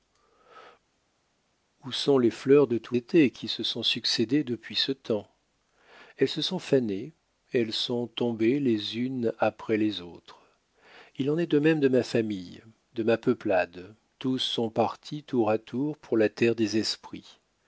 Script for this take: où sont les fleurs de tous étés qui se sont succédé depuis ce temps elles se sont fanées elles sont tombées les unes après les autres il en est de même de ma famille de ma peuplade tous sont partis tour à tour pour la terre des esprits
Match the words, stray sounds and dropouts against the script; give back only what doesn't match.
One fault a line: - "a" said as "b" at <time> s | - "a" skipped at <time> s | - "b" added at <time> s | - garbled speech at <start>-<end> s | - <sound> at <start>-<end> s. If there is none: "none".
none